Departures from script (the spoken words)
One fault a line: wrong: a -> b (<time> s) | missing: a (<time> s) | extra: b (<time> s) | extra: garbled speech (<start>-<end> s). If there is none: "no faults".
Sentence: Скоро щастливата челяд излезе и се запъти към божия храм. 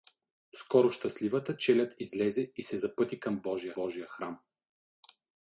extra: божия (3.7 s)